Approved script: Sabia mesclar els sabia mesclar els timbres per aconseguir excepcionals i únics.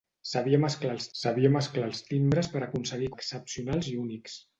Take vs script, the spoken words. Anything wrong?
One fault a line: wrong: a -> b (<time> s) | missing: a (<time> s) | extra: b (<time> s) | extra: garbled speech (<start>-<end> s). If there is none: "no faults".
no faults